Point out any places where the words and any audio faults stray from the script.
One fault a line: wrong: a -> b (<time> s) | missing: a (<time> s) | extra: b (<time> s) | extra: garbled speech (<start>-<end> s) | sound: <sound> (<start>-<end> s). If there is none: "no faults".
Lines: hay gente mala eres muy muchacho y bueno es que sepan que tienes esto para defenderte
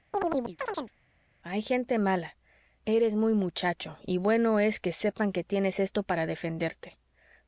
sound: chirp (0.1-0.9 s)